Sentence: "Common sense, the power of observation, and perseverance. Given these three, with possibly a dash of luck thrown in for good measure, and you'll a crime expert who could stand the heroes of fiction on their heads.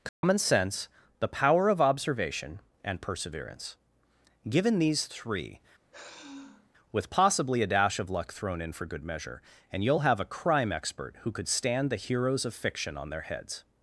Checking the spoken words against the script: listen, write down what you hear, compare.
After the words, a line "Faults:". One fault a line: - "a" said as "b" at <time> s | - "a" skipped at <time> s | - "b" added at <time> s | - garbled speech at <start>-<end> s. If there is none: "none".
"Common sense, the power of observation, and perseverance. Given these three, with possibly a dash of luck thrown in for good measure, and you'll have a crime expert who could stand the heroes of fiction on their heads.
Faults:
- "have" added at 10.0 s